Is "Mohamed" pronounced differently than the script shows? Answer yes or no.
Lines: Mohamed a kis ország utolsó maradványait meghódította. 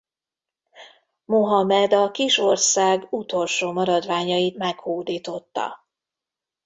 no